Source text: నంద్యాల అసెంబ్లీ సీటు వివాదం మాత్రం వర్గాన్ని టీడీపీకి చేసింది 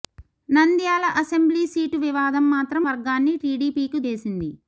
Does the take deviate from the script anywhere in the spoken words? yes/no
no